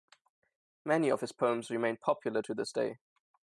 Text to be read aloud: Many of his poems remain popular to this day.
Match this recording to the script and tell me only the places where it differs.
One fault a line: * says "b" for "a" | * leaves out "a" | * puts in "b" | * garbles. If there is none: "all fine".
all fine